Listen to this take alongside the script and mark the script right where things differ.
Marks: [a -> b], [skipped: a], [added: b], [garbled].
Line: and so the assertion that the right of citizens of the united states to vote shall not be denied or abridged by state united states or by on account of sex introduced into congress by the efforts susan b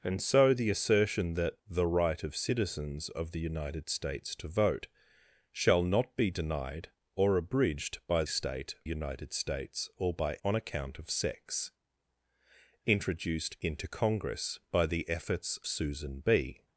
and so the assertion that the right of citizens of the united states to vote shall not be denied or abridged by state united states or by on account of sex introduced into congress by the efforts susan b